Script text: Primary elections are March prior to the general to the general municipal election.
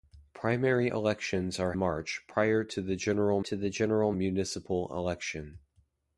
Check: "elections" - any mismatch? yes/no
no